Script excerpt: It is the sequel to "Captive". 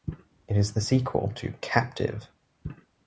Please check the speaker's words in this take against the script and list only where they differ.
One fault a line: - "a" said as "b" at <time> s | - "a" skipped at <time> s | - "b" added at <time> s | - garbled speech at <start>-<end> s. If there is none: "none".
none